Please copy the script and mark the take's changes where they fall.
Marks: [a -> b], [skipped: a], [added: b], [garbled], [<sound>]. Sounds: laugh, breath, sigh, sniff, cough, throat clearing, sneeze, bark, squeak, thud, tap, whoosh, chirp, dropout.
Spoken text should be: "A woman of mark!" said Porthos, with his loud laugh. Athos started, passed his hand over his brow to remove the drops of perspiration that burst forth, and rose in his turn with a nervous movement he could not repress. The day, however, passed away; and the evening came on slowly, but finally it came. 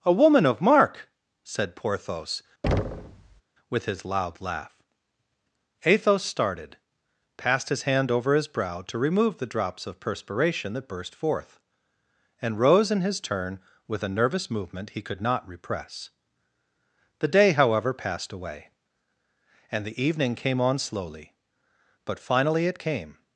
"A woman of mark!" said Porthos, [thud] with his loud laugh. Athos started, passed his hand over his brow to remove the drops of perspiration that burst forth, and rose in his turn with a nervous movement he could not repress. The day, however, passed away; and the evening came on slowly, but finally it came.